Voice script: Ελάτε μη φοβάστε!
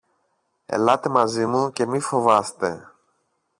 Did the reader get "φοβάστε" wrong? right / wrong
right